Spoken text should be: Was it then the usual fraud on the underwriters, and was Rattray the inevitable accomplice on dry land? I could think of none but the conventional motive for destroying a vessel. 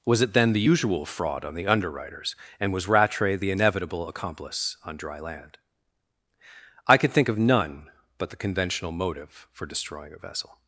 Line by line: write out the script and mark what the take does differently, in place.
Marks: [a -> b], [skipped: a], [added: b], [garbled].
Was it then the usual fraud on the underwriters, and was Rattray the inevitable accomplice on dry land? I could think of none but the conventional motive for destroying a vessel.